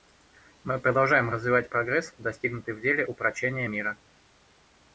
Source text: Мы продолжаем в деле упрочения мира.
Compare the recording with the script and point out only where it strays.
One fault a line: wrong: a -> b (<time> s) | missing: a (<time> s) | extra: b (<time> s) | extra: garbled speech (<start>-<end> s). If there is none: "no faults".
extra: развивать прогресс достигнутый (1.3 s)